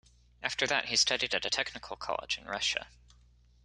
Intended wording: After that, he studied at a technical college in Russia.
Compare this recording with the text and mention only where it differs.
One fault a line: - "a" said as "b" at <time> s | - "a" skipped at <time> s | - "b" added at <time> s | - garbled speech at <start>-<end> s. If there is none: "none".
none